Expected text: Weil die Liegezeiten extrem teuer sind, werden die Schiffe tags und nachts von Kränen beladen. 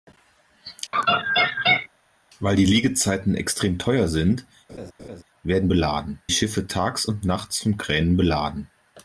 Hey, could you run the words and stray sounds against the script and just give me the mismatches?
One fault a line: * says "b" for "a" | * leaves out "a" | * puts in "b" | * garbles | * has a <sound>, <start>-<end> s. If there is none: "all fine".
* has a laugh, 0.9-1.9 s
* has a laugh, 4.7-5.2 s
* says "beladen" for "die"